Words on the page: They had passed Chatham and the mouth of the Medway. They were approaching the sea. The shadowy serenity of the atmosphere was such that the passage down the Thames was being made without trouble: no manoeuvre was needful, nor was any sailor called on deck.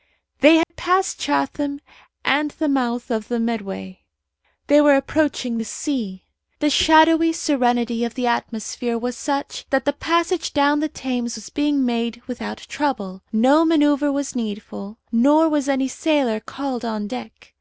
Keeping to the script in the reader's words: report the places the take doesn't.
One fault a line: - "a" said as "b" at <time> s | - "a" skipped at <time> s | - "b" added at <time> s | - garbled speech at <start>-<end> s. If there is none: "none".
none